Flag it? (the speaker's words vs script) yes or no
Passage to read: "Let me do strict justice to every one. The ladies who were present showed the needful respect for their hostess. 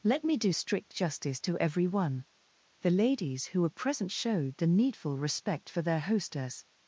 no